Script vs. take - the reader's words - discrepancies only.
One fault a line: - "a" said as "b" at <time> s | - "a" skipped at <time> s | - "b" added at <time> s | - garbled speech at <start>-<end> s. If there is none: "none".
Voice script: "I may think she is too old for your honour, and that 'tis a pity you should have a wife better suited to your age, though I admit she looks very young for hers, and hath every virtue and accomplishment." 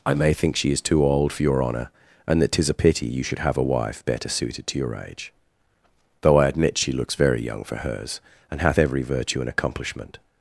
none